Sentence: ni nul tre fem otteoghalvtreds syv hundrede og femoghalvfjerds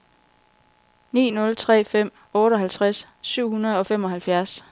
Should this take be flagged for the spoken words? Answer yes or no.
no